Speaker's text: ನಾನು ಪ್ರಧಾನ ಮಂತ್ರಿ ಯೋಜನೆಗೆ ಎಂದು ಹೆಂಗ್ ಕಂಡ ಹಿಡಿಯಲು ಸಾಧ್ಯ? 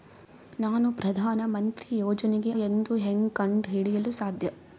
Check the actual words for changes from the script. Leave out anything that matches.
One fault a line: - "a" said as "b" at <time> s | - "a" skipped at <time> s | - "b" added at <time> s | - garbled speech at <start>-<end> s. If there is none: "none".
none